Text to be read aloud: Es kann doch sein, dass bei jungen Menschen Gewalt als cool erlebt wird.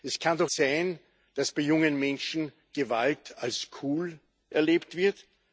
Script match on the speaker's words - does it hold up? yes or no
yes